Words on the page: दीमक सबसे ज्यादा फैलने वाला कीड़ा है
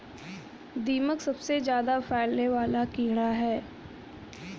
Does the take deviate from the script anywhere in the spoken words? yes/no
no